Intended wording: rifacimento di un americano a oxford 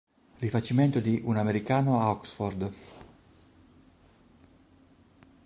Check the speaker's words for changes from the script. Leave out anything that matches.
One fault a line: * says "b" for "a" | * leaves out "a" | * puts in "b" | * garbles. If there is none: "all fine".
all fine